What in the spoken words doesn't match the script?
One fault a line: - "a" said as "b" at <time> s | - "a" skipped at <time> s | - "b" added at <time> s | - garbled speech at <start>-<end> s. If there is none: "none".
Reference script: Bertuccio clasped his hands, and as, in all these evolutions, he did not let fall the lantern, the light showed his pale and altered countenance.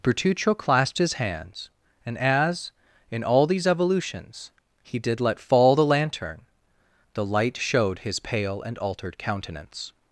- "not" skipped at 5.2 s